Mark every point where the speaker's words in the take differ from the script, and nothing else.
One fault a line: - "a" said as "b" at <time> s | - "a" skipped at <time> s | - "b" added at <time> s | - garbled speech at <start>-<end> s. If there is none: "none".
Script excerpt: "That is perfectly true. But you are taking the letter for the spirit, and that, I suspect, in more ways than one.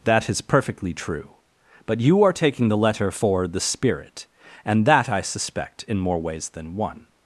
none